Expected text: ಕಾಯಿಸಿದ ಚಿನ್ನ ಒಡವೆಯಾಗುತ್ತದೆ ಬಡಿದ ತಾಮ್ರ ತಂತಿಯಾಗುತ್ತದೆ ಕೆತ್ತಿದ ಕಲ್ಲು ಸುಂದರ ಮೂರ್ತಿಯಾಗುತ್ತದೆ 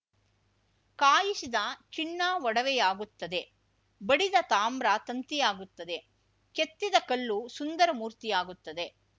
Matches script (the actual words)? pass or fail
pass